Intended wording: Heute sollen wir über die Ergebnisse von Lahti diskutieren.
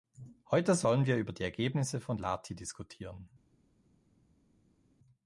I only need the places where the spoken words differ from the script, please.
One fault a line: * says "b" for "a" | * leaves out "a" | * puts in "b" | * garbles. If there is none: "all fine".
all fine